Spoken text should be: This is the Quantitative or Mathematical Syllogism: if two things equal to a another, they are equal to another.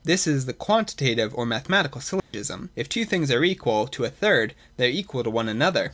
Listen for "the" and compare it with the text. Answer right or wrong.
right